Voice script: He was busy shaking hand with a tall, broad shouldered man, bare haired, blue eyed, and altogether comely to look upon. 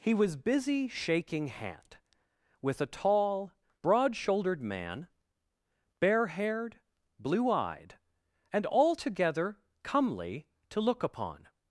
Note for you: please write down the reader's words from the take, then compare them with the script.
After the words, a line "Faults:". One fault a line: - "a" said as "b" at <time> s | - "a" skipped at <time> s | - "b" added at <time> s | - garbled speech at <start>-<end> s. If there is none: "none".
He was busy shaking hand with a tall, broad shouldered man, bare haired, blue eyed, and altogether comely to look upon.
Faults:
none